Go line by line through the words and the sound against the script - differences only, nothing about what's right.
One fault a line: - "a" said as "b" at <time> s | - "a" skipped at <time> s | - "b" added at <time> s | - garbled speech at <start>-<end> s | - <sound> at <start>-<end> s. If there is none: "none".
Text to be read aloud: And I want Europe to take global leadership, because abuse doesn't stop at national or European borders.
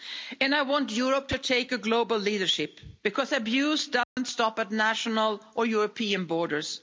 - dropout at 4.0-4.2 s